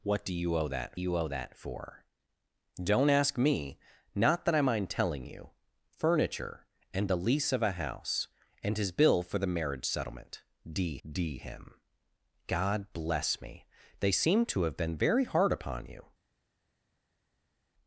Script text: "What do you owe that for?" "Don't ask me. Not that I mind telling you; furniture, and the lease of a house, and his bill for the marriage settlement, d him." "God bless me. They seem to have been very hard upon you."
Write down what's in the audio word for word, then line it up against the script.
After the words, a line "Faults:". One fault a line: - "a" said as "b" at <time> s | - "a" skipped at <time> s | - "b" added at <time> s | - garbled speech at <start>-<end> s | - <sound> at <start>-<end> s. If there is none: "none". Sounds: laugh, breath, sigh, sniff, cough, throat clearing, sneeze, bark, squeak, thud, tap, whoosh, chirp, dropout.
"What do you owe that you owe that for?" "Don't ask me. Not that I mind telling you; furniture, and the lease of a house, and his bill for the marriage settlement, d d him." "God bless me. They seem to have been very hard upon you."
Faults:
- "you owe that" added at 0.9 s
- "d" added at 11.1 s